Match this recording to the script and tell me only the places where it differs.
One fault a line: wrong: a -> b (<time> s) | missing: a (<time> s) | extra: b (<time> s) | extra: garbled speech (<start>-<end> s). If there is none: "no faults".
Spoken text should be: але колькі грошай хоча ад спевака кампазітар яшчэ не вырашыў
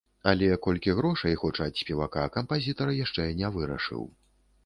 no faults